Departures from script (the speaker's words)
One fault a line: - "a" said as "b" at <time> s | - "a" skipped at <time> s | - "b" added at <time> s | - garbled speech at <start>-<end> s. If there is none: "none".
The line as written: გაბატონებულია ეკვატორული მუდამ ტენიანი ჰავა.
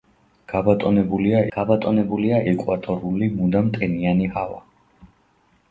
- "გაბატონებულია" added at 1.5 s